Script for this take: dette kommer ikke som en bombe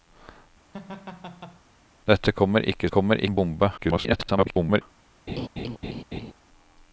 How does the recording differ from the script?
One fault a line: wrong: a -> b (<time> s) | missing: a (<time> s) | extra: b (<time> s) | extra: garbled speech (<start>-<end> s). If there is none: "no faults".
wrong: som -> kommer (2.9 s)
extra: garbled speech (3.8-4.8 s)